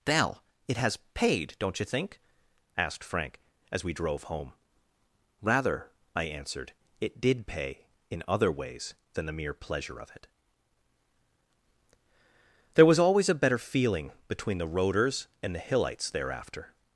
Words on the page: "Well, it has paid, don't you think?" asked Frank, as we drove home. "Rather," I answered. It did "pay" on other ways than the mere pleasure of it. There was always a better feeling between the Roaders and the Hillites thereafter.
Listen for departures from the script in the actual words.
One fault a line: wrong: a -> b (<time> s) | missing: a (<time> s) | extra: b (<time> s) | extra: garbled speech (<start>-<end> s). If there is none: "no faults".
wrong: on -> in (8.1 s)